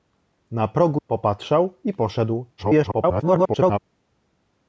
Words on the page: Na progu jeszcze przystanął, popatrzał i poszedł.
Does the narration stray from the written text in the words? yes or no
yes